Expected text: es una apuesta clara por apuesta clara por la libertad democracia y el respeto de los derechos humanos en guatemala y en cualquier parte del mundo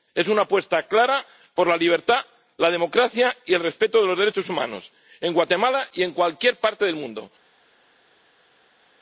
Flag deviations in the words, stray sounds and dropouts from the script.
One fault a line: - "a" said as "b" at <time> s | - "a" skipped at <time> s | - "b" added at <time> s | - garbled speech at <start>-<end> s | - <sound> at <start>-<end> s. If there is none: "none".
- "apuesta clara por" said as "la libertad" at 1.7 s
- "libertad" skipped at 2.7 s